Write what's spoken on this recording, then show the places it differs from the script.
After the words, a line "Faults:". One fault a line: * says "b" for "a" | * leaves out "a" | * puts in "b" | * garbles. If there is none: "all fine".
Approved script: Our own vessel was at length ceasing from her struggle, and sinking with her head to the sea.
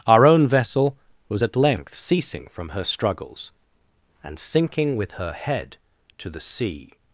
Our own vessel was at length ceasing from her struggles, and sinking with her head to the sea.
Faults:
* says "struggles" for "struggle"